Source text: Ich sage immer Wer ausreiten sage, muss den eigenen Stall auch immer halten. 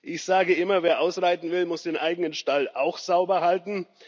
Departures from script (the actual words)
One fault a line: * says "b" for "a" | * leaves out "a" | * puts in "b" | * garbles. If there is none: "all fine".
* says "will" for "sage"
* says "sauber" for "immer"